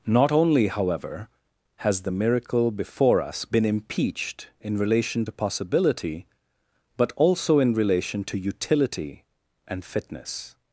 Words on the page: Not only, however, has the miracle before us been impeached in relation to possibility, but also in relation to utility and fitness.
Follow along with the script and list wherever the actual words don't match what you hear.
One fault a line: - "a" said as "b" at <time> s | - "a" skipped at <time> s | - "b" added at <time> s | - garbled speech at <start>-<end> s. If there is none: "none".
none